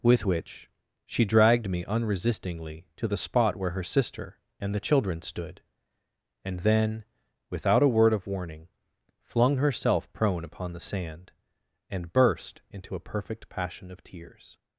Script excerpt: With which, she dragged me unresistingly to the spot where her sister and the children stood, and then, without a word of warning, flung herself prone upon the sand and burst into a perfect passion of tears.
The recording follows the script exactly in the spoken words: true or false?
true